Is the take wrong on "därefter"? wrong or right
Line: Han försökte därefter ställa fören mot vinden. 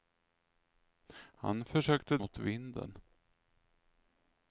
wrong